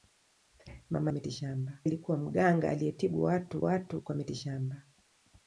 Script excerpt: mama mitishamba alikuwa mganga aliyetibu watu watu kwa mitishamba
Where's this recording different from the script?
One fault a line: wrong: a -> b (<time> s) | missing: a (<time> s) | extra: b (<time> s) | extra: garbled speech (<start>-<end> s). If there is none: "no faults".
no faults